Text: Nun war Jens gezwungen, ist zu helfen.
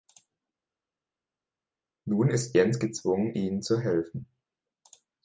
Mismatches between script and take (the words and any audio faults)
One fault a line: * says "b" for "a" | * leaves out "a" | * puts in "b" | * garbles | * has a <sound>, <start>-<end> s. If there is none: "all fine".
* says "ist" for "war"
* says "ihnen" for "ist"